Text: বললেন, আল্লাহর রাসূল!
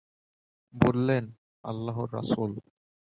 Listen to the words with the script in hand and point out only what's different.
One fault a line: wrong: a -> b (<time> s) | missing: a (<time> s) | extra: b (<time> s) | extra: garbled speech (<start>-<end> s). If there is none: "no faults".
no faults